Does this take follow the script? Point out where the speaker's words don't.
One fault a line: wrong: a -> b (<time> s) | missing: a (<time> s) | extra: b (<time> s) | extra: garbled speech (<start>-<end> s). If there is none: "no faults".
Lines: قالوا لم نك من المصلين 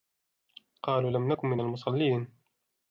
no faults